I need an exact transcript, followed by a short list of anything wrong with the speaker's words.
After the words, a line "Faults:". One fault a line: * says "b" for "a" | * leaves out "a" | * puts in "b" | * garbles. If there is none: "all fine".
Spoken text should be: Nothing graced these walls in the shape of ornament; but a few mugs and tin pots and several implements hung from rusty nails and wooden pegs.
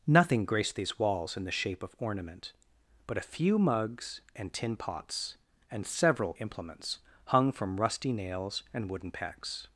Nothing graced these walls in the shape of ornament; but a few mugs and tin pots and several implements hung from rusty nails and wooden pegs.
Faults:
all fine